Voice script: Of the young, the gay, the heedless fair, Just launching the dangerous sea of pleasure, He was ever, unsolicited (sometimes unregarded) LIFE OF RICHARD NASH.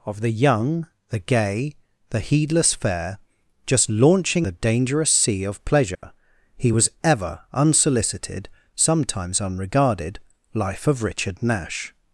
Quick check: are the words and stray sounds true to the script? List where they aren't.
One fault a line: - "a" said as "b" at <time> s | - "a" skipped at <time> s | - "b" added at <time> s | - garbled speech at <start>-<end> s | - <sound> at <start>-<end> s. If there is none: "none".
- dropout at 5.9-6.0 s